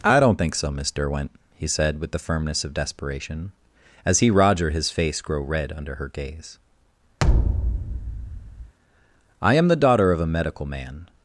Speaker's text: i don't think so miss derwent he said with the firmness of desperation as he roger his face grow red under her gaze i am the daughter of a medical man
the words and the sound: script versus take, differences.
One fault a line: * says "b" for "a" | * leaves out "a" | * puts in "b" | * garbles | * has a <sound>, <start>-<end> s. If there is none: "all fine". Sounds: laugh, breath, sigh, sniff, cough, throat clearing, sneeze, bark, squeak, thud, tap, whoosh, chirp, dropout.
* has a thud, 7.2-8.7 s